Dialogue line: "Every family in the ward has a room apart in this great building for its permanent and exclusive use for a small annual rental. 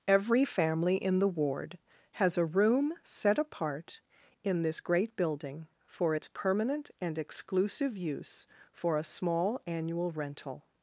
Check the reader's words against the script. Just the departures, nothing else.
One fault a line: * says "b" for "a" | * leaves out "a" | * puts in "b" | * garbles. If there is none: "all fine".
* puts in "set"